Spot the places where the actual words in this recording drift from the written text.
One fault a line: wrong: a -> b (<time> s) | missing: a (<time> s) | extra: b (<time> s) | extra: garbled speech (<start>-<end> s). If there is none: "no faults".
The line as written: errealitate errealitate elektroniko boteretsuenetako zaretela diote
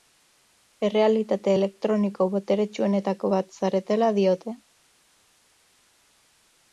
missing: errealitate (1.5 s)
extra: bat (3.3 s)